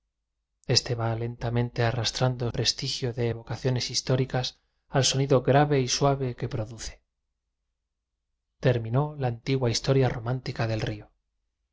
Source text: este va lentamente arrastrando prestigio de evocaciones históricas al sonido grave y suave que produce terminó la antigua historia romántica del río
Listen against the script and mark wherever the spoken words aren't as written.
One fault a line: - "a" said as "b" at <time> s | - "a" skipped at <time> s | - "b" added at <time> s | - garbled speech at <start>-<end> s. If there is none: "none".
none